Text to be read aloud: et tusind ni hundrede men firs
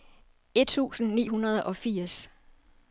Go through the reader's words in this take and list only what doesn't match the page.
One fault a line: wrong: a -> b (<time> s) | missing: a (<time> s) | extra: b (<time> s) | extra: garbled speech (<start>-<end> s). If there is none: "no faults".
wrong: men -> og (1.6 s)